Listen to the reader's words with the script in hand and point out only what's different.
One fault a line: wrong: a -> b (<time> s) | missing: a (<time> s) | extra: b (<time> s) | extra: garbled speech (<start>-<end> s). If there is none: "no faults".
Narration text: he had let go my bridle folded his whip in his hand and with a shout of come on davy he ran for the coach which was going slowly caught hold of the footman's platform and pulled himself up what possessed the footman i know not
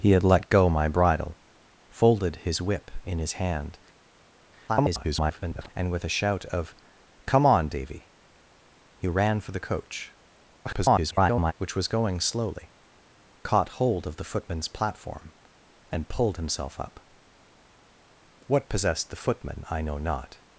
extra: garbled speech (4.7-5.7 s)
extra: garbled speech (10.6-11.5 s)